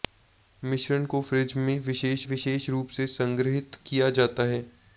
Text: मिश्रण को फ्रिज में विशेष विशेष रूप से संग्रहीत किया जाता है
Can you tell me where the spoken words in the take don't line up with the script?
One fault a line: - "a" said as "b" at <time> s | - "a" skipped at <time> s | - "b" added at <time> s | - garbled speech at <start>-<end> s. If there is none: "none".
none